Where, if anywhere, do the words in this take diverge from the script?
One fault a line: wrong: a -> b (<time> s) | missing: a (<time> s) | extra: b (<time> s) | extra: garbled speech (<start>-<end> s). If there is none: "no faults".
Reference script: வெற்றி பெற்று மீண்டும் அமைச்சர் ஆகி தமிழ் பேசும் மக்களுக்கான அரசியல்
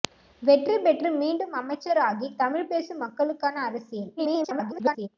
extra: garbled speech (4.2-5.1 s)